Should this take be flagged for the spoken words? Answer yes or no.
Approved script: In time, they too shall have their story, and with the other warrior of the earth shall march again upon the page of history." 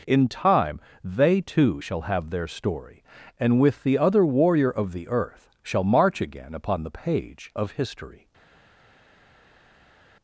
no